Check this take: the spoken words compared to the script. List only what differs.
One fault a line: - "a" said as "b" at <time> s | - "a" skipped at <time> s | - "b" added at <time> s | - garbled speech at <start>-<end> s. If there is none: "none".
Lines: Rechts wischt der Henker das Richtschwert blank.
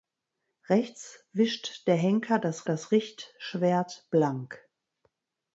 - "das" added at 2.6 s